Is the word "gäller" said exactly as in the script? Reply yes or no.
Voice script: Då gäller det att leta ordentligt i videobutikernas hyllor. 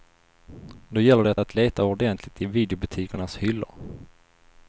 yes